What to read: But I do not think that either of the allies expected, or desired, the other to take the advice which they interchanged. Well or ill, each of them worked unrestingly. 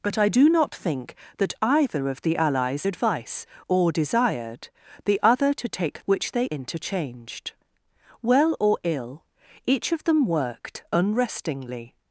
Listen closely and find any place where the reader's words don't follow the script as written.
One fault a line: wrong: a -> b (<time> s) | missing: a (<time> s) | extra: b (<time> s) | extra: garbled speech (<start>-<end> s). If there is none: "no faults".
wrong: expected -> advice (2.8 s)
missing: the advice (6.0 s)